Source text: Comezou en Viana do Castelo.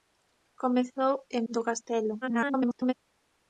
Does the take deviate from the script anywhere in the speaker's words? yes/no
yes